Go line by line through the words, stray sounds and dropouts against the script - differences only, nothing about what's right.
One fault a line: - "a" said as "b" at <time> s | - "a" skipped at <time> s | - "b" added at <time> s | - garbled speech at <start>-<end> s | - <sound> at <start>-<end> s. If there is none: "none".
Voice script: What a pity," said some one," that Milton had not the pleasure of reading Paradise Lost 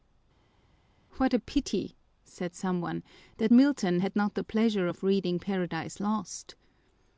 none